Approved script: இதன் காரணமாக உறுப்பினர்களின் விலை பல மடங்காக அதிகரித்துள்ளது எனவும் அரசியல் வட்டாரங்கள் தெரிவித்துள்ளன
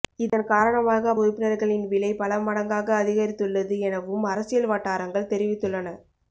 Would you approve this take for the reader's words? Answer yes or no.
yes